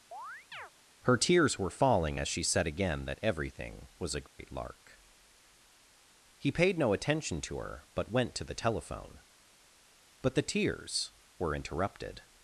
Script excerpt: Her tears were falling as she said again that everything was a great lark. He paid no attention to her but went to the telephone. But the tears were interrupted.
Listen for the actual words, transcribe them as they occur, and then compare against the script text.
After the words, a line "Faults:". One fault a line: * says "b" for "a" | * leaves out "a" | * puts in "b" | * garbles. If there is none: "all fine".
Her tears were falling as she said again that everything was a great lark. He paid no attention to her but went to the telephone. But the tears were interrupted.
Faults:
all fine